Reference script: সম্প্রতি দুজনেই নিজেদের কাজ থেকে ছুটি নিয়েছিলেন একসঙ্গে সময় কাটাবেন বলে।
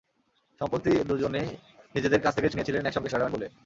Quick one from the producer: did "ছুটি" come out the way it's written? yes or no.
no